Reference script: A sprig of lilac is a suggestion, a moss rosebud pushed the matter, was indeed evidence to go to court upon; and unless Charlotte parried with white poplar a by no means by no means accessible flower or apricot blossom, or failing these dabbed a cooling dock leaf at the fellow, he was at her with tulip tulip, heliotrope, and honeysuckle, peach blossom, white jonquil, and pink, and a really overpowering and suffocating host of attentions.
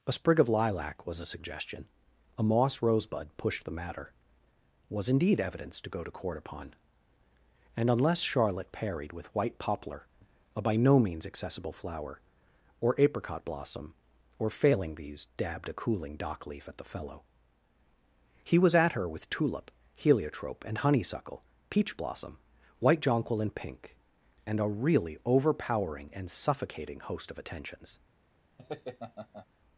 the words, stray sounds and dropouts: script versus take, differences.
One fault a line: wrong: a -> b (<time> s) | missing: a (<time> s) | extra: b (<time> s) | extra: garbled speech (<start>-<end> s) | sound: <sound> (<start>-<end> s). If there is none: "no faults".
wrong: is -> was (1.0 s)
missing: by no means (11.2 s)
missing: tulip (19.7 s)
sound: laugh (28.6-29.5 s)